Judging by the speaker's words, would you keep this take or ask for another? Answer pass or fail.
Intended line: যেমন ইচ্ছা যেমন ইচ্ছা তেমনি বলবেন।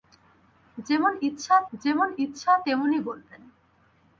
pass